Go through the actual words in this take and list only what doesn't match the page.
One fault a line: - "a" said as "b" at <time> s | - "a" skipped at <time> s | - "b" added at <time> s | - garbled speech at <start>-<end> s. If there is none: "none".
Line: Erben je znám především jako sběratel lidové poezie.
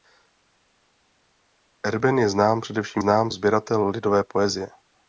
- "jako" said as "znám" at 3.0 s